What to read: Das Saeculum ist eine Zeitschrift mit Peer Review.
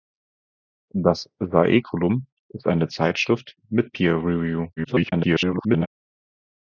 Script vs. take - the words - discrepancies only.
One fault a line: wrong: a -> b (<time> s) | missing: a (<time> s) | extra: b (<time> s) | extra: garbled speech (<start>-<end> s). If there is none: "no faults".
extra: garbled speech (4.8-5.9 s)